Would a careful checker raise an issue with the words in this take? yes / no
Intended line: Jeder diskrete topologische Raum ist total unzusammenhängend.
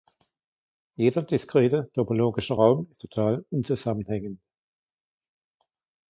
no